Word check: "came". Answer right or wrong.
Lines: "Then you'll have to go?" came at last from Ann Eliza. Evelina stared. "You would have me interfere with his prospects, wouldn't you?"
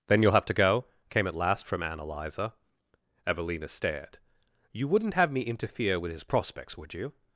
right